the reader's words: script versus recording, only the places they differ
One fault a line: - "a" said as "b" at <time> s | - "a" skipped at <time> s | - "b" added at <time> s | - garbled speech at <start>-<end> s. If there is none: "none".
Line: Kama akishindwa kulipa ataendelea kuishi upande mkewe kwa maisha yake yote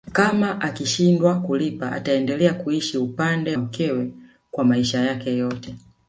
none